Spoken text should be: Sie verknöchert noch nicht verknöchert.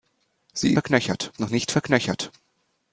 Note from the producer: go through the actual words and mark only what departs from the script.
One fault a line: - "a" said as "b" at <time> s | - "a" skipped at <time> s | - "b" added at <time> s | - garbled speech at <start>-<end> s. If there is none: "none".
none